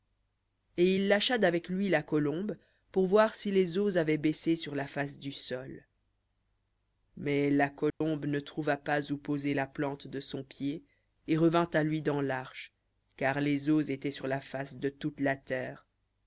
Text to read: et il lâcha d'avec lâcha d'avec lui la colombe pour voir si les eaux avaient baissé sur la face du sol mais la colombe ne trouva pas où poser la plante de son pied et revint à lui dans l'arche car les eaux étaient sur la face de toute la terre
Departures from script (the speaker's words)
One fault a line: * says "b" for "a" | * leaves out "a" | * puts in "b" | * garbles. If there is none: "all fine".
* leaves out "lâcha d'avec"